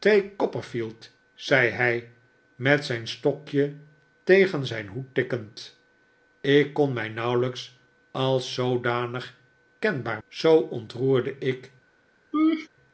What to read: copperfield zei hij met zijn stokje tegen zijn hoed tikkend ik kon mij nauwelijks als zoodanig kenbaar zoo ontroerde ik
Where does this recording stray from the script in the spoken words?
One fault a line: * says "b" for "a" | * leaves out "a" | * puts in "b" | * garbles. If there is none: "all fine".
all fine